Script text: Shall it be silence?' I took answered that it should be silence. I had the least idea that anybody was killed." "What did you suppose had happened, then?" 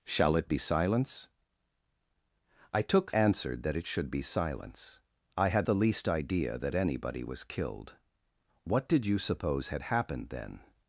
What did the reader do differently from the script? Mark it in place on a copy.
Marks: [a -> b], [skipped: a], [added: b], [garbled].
Shall it be silence?' I took answered that it should be silence. I had the least idea that anybody was killed." "What did you suppose had happened, then?"